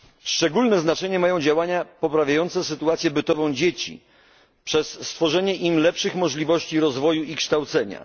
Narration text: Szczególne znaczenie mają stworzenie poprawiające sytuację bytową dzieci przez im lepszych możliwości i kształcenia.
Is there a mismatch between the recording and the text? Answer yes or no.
yes